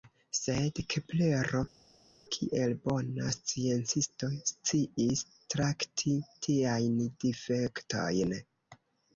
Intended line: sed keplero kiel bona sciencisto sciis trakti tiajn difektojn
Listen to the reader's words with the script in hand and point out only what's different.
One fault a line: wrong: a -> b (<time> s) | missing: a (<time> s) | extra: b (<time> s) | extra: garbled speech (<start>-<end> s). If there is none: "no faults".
no faults